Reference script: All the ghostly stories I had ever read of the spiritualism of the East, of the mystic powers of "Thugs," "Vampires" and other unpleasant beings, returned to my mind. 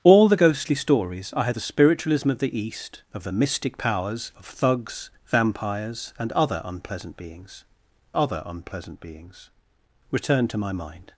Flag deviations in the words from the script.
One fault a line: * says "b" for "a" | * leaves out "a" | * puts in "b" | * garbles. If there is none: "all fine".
* leaves out "ever read of"
* puts in "other unpleasant beings"